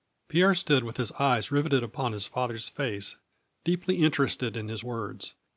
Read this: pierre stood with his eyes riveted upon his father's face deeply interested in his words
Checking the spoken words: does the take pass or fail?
pass